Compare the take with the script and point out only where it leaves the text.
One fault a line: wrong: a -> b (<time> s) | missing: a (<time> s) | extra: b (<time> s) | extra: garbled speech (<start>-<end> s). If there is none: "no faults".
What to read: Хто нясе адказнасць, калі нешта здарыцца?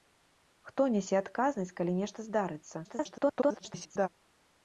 extra: garbled speech (2.8-4.1 s)